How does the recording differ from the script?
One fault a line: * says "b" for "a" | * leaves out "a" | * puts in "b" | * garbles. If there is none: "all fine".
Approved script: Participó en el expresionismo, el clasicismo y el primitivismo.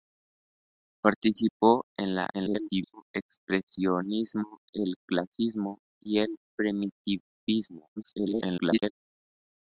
* garbles
* garbles